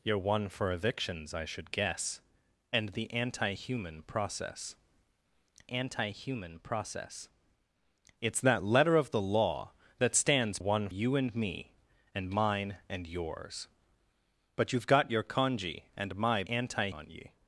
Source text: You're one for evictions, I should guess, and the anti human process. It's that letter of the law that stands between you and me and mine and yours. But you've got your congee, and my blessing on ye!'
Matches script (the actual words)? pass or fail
fail